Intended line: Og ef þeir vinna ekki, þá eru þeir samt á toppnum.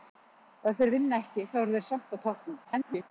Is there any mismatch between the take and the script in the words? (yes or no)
yes